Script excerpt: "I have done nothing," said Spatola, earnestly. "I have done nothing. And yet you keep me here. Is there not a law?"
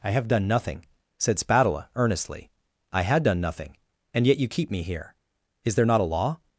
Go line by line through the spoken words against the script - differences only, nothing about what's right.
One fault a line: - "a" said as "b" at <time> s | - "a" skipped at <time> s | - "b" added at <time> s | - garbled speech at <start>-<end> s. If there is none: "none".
- "have" said as "had" at 3.0 s